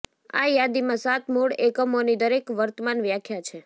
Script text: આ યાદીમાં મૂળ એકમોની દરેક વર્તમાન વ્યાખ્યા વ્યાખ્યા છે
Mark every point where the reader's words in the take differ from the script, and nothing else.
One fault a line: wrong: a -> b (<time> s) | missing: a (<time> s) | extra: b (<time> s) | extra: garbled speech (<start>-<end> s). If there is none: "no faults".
extra: સાત (1.0 s)
missing: વ્યાખ્યા (3.5 s)